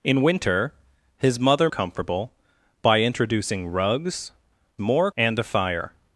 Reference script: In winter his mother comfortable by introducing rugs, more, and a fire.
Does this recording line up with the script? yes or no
yes